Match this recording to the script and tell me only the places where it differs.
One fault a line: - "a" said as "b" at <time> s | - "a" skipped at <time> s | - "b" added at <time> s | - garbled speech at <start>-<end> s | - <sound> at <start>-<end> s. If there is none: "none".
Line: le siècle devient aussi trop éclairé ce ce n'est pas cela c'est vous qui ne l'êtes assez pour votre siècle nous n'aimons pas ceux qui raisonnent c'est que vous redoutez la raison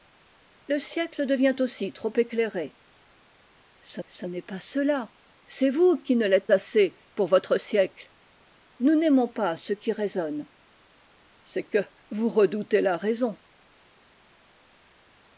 none